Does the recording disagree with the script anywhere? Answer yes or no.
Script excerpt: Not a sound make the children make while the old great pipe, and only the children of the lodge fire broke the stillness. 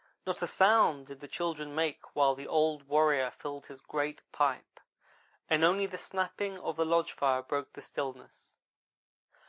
yes